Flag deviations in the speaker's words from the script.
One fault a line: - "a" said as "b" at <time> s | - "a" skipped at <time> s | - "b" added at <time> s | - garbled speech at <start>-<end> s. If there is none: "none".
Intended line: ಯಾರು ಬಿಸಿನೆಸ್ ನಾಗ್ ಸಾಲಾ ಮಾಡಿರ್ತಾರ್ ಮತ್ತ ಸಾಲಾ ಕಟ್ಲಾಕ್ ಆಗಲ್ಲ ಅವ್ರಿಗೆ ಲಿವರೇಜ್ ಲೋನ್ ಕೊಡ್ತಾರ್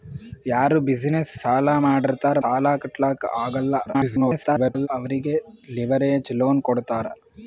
- "ನಾಗ್" skipped at 1.3 s
- "ಮತ್ತ" skipped at 2.4 s
- garbled speech at 3.9-4.9 s